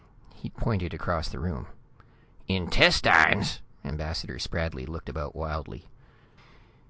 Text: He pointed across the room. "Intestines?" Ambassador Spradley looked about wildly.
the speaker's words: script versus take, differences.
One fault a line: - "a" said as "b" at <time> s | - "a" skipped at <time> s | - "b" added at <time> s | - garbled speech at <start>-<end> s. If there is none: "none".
none